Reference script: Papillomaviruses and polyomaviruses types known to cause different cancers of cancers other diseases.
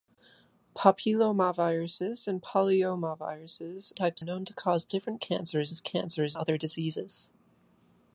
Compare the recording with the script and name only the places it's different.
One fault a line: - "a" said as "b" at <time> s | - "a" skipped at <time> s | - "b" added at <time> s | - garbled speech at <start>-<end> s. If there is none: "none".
none